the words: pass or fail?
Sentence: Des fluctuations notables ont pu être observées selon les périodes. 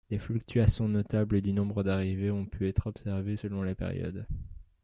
fail